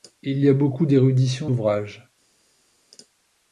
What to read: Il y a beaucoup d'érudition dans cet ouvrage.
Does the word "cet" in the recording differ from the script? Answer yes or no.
yes